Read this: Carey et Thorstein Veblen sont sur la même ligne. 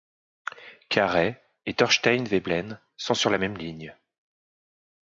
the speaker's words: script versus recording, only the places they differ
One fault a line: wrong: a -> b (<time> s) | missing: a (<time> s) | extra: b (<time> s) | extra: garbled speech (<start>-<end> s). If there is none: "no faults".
no faults